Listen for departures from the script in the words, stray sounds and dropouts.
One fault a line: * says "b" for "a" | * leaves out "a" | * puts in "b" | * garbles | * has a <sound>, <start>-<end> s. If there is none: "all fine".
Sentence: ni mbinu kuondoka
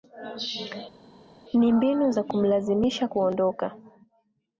* puts in "za kumlazimisha"